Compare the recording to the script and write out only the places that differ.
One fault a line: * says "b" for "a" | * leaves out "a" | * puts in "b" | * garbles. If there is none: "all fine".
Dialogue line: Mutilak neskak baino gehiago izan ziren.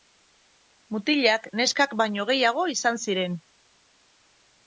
all fine